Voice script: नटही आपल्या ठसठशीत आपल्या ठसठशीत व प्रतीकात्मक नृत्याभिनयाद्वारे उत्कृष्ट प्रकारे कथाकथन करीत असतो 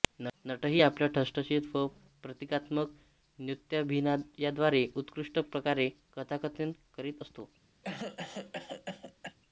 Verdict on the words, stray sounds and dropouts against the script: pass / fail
fail